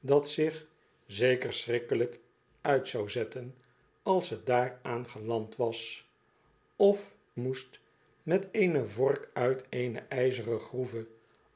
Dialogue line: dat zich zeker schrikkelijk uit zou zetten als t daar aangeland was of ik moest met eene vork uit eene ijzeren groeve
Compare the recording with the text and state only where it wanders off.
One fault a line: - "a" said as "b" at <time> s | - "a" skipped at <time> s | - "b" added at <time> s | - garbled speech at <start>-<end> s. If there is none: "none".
- "ik" skipped at 7.2 s